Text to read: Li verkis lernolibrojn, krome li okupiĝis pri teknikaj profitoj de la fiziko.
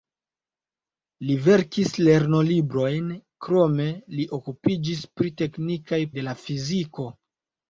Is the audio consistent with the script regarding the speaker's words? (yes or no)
no